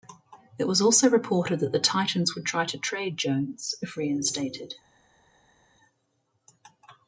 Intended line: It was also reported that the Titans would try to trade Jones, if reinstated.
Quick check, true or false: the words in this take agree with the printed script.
true